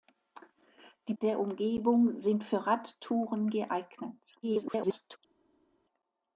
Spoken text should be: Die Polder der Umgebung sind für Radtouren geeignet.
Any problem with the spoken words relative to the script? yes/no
yes